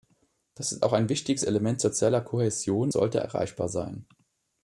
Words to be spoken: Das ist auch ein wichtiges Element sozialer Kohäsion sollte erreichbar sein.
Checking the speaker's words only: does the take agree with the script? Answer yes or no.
yes